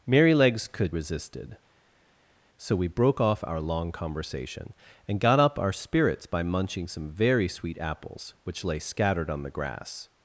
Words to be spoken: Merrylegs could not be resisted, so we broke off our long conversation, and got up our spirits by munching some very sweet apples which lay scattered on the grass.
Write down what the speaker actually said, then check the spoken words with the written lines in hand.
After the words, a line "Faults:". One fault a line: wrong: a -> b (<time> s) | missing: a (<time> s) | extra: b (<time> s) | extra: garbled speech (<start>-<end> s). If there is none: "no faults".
Merrylegs could resisted, so we broke off our long conversation, and got up our spirits by munching some very sweet apples which lay scattered on the grass.
Faults:
missing: not be (0.9 s)